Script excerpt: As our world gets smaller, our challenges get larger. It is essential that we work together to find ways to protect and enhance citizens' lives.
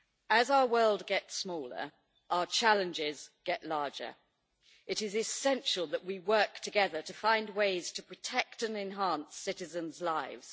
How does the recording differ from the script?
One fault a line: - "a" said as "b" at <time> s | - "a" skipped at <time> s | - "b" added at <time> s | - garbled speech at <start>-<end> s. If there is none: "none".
none